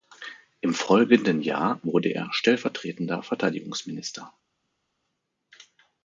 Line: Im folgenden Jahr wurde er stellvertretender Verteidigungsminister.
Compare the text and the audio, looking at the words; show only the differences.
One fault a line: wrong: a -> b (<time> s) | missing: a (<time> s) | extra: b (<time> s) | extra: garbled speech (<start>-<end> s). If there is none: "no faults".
no faults